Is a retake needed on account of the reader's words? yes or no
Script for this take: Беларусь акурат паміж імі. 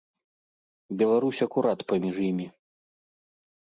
no